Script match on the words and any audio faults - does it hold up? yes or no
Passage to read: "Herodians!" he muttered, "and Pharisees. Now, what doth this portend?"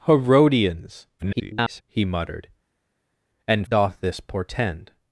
no